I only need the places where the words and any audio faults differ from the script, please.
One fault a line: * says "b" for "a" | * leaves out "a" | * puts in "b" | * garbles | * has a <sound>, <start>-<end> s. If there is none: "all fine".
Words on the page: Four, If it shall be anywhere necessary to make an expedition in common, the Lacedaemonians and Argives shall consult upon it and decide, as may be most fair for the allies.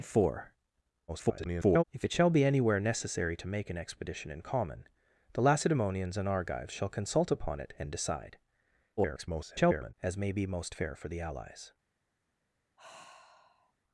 * garbles
* garbles
* has a sigh, 12.8-13.7 s